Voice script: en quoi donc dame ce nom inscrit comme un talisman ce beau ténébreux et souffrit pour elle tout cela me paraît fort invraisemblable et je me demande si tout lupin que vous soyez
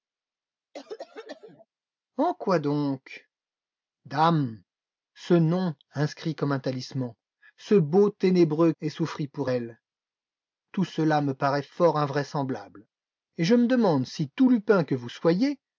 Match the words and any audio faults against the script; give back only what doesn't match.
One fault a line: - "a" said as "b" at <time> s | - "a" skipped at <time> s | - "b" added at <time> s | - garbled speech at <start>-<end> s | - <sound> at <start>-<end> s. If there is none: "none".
- cough at 0.7-1.7 s